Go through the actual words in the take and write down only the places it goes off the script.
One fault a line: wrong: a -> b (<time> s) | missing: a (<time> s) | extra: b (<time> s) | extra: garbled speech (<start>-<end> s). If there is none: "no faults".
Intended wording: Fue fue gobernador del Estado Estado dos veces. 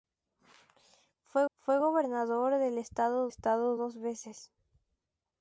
no faults